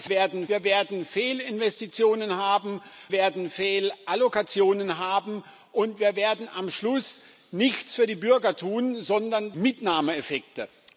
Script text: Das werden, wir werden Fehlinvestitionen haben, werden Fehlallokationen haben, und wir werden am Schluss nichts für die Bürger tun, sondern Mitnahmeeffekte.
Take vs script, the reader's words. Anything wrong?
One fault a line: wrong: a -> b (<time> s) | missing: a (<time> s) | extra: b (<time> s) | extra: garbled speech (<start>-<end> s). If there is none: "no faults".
no faults